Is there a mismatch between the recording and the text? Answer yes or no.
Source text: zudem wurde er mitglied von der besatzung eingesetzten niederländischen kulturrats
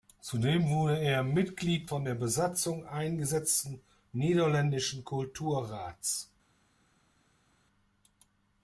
no